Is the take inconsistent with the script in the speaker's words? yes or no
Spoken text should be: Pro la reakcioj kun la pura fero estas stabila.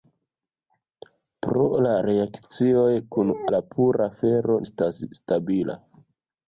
no